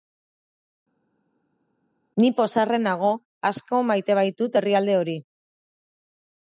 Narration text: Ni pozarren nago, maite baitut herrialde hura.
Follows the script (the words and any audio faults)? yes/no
no